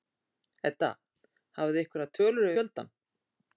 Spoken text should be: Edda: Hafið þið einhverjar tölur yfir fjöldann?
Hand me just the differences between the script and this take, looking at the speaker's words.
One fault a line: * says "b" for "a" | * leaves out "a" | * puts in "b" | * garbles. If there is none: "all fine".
* leaves out "yfir"